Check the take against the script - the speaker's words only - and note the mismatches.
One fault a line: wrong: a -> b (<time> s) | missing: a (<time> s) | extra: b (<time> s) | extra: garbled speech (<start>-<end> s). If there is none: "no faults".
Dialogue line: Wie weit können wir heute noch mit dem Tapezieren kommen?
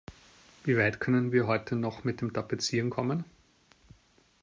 no faults